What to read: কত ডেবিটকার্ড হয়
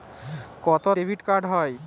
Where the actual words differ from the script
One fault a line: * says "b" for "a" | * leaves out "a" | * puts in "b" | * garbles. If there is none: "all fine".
all fine